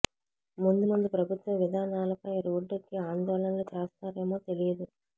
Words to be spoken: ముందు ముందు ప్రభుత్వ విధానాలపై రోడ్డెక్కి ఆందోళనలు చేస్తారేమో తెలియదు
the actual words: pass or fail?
pass